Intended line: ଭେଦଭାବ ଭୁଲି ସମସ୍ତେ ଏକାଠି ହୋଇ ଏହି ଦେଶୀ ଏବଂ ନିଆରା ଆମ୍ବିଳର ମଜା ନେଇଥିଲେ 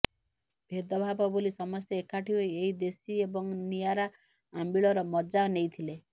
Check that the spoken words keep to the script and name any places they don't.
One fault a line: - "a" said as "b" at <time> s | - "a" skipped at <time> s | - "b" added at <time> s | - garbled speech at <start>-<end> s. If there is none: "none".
none